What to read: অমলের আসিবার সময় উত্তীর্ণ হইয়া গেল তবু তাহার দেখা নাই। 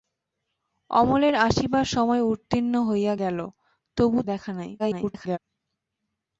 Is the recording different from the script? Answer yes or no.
yes